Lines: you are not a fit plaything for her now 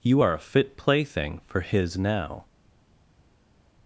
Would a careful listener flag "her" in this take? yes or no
yes